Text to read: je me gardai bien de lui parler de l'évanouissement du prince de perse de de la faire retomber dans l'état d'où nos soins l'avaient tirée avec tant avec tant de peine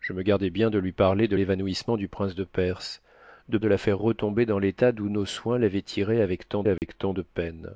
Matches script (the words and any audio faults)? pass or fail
fail